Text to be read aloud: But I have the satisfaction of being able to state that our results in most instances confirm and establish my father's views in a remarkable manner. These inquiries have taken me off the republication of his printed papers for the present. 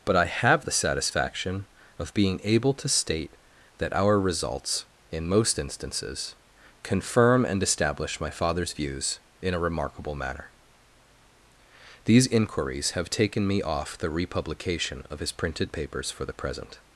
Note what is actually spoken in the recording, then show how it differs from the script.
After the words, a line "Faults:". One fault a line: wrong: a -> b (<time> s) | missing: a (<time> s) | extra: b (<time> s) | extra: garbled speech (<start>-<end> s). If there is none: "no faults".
But I have the satisfaction of being able to state that our results in most instances confirm and establish my father's views in a remarkable manner. These inquiries have taken me off the republication of his printed papers for the present.
Faults:
no faults